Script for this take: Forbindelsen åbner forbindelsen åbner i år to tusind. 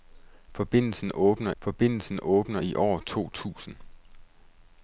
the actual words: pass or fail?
pass